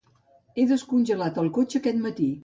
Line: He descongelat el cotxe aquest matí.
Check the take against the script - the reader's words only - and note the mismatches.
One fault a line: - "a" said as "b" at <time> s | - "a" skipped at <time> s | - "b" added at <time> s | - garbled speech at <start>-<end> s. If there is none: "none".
none